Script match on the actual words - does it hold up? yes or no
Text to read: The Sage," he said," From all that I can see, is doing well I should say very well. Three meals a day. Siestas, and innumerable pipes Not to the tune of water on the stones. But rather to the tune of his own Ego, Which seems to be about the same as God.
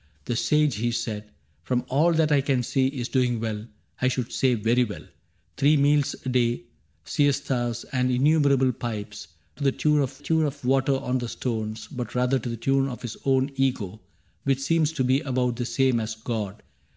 no